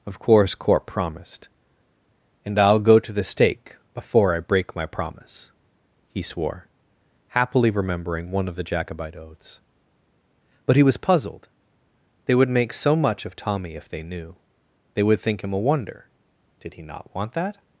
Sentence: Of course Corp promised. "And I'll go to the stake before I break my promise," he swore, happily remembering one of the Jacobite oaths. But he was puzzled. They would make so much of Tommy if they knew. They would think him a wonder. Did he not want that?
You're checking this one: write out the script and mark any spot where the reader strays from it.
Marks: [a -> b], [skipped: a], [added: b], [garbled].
Of course Corp promised. "And I'll go to the stake before I break my promise," he swore, happily remembering one of the Jacobite oaths. But he was puzzled. They would make so much of Tommy if they knew. They would think him a wonder. Did he not want that?